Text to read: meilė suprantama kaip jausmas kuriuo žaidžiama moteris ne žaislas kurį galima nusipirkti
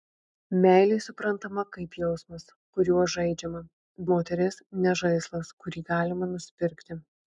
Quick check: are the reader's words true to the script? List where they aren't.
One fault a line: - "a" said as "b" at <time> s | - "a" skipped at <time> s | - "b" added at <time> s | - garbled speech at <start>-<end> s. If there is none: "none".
none